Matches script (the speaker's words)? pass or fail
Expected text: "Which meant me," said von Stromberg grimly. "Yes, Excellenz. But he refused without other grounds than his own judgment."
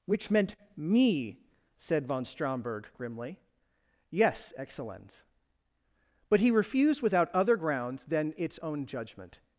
fail